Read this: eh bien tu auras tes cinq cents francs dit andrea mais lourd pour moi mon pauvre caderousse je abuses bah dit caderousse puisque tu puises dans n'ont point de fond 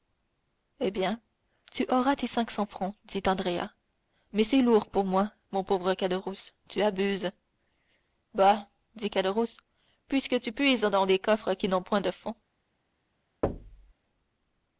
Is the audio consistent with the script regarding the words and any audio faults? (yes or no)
no